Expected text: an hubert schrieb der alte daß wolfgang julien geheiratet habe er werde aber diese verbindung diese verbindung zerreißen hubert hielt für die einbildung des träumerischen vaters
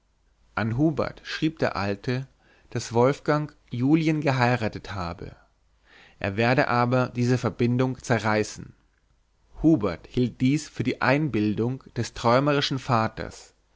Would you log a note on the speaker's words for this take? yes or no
yes